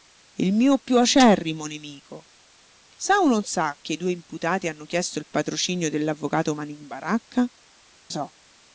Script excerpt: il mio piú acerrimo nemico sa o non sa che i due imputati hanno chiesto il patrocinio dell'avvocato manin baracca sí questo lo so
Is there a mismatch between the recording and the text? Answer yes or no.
yes